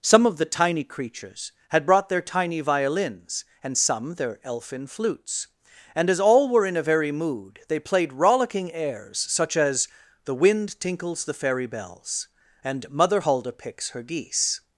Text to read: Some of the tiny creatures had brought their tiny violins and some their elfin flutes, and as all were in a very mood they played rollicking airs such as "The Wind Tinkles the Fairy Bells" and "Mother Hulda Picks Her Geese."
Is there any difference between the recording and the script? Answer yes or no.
no